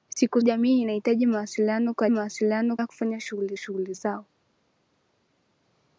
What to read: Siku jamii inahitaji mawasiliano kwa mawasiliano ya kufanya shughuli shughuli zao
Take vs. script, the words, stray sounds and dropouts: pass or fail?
pass